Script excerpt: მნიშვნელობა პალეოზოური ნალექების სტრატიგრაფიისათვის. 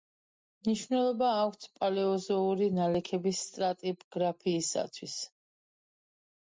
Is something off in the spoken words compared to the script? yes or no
yes